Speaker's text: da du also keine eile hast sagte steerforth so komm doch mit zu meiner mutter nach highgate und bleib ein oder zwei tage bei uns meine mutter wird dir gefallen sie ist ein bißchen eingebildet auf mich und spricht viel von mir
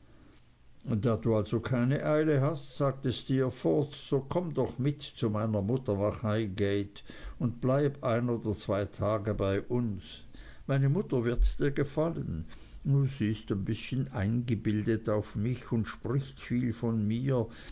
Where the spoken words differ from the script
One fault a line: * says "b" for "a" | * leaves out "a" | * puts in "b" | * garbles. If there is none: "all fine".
all fine